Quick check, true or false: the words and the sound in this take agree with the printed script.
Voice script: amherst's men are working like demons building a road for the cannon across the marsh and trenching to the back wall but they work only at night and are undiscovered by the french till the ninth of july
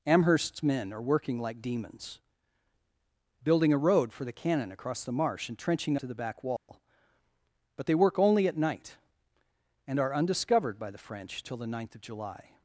false